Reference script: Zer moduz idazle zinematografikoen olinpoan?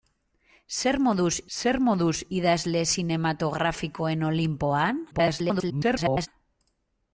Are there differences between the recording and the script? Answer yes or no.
yes